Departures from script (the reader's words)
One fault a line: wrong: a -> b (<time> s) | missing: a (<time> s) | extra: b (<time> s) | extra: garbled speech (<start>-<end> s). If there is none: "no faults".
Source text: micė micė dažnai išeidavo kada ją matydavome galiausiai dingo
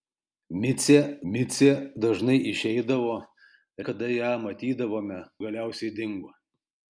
no faults